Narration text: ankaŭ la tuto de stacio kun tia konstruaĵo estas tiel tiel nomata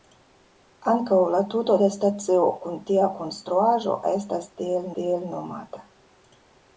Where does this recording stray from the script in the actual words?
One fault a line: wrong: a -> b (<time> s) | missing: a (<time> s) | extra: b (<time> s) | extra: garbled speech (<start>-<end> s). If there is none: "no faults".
no faults